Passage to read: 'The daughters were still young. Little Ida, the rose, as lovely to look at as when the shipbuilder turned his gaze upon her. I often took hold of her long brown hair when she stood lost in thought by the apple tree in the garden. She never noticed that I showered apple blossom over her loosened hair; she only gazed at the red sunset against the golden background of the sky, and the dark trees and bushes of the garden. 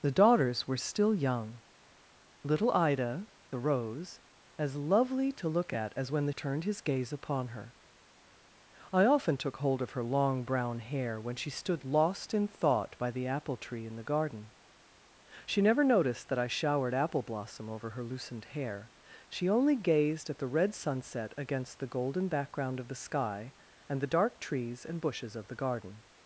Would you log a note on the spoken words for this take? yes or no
yes